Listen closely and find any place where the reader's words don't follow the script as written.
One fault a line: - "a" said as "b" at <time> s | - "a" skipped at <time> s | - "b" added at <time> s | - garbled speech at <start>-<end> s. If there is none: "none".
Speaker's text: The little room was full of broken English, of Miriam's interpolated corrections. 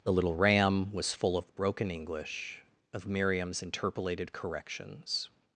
- "room" said as "ram" at 0.3 s